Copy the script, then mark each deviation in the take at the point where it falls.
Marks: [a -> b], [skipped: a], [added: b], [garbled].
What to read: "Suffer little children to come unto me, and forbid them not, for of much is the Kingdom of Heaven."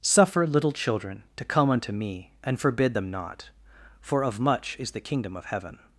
"Suffer little children to come unto me, and forbid them not, for of much is the Kingdom of Heaven."